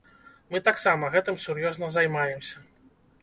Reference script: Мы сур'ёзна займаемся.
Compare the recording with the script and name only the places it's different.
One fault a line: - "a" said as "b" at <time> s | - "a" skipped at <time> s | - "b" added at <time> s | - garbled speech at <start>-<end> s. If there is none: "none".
- "таксама гэтым" added at 0.7 s